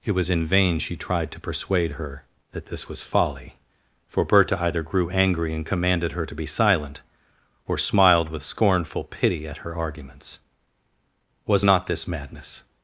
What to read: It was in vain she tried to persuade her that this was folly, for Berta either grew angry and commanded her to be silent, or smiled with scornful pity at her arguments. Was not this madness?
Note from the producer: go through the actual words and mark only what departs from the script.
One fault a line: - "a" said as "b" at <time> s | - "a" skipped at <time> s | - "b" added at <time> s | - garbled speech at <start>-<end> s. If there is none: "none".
none